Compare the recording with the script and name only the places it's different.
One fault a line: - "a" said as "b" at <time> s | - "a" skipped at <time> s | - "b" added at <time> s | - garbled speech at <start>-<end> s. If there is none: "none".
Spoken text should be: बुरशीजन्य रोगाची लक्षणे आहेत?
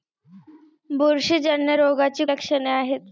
none